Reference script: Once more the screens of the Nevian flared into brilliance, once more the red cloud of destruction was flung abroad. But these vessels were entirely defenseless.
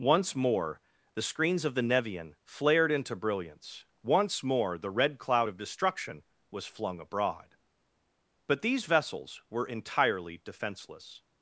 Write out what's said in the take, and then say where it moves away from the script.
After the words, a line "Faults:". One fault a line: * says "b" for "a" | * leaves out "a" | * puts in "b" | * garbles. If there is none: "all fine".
Once more the screens of the Nevian flared into brilliance, once more the red cloud of destruction was flung abroad. But these vessels were entirely defenseless.
Faults:
all fine